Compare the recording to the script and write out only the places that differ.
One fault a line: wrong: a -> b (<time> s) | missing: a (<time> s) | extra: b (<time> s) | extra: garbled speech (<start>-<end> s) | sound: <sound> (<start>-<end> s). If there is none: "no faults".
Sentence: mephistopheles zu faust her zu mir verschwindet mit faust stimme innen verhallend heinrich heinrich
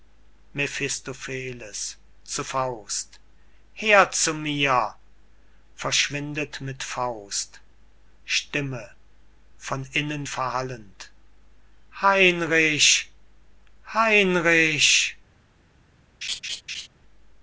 extra: von (9.6 s)
sound: laugh (16.2-16.9 s)